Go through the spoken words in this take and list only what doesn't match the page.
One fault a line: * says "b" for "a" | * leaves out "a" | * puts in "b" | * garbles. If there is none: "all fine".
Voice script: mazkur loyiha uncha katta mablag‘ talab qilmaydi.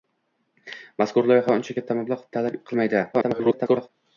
* garbles